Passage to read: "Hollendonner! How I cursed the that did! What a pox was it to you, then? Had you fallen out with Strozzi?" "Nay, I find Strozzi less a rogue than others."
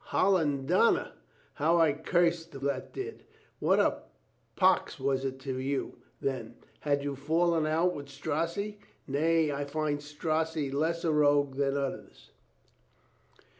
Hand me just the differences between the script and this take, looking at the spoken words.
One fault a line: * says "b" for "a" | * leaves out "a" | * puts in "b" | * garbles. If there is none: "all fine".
all fine